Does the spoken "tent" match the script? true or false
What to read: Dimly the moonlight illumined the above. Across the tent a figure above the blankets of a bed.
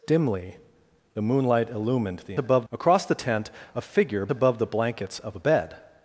true